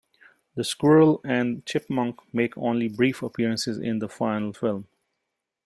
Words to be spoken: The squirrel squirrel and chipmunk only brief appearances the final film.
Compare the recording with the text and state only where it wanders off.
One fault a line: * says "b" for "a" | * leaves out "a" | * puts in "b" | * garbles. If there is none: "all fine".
* leaves out "squirrel"
* puts in "make"
* puts in "in"